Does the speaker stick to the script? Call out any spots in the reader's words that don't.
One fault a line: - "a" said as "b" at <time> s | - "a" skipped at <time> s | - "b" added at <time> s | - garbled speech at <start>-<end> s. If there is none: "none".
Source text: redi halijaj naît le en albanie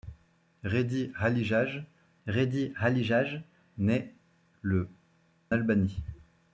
- "redi halijaj" added at 2.3 s
- "en" skipped at 4.9 s